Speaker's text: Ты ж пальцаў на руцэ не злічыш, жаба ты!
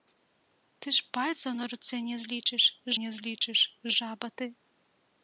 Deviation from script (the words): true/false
true